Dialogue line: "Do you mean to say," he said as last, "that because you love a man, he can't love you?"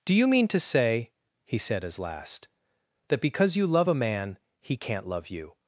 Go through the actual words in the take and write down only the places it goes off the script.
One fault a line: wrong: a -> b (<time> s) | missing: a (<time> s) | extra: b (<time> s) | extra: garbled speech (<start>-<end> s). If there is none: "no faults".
no faults